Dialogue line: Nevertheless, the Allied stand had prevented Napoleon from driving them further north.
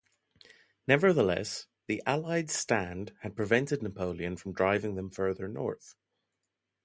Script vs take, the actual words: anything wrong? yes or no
no